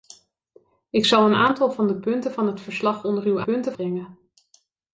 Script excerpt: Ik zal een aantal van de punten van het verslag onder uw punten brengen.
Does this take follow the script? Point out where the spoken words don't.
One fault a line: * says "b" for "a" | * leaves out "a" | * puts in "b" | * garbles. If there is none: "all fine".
all fine